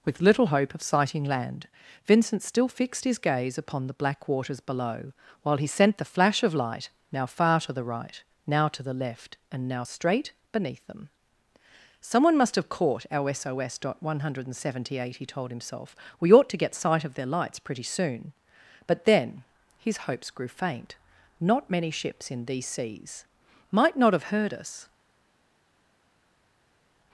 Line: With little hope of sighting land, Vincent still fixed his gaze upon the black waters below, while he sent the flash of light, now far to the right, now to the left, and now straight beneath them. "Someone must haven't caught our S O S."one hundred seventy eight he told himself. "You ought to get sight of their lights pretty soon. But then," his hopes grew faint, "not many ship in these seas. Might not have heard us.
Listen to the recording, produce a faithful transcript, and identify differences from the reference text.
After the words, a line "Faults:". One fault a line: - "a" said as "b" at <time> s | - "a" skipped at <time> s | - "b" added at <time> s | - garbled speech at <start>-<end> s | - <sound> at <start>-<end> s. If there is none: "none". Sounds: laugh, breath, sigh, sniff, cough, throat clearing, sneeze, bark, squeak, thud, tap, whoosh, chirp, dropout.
With little hope of sighting land, Vincent still fixed his gaze upon the black waters below, while he sent the flash of light, now far to the right, now to the left, and now straight beneath them. "Someone must have caught our S O S."one hundred seventy eight he told himself. "We ought to get sight of their lights pretty soon. But then," his hopes grew faint, "not many ships in these seas. Might not have heard us.
Faults:
- "haven't" said as "have" at 12.6 s
- "You" said as "We" at 16.2 s
- "ship" said as "ships" at 21.9 s